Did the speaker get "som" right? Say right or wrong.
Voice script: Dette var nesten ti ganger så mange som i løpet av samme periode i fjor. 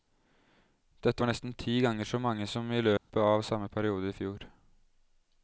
right